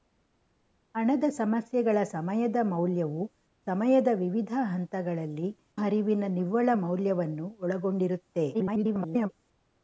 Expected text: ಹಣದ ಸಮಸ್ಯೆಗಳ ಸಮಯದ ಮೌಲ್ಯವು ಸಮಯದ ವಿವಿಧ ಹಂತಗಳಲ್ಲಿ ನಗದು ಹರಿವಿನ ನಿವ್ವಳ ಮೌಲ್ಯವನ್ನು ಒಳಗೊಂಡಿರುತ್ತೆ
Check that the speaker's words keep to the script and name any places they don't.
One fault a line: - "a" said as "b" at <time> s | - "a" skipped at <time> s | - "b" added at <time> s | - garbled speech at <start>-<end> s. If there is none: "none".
- "ನಗದು" skipped at 5.5 s
- garbled speech at 8.5-9.3 s